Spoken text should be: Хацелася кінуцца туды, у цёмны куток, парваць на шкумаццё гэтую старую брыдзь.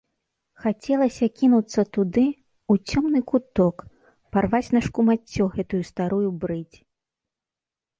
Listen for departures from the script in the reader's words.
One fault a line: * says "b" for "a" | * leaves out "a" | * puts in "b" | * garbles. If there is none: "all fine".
all fine